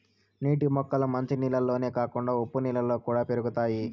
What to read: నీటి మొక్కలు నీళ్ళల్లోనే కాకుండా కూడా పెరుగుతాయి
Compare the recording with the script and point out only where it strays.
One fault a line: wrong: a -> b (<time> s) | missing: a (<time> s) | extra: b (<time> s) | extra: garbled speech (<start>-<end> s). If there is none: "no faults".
extra: మంచి (1.1 s)
extra: ఉప్పు నీళ్ళలో (2.4 s)